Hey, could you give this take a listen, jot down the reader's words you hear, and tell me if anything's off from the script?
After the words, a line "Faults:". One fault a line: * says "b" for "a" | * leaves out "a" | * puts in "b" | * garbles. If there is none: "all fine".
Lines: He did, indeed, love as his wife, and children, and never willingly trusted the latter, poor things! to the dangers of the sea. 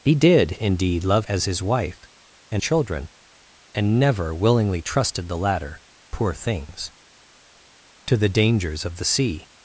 He did, indeed, love as his wife, and children, and never willingly trusted the latter, poor things! to the dangers of the sea.
Faults:
all fine